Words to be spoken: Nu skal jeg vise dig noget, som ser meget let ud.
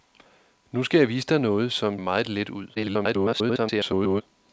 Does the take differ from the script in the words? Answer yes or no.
yes